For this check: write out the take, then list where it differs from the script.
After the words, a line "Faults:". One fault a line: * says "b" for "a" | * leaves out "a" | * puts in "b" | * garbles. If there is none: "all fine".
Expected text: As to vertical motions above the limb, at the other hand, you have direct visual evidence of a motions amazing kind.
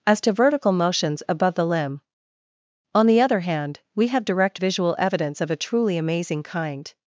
As to vertical motions above the limb, on the other hand, we have direct visual evidence of a truly amazing kind.
Faults:
* says "on" for "at"
* says "we" for "you"
* says "truly" for "motions"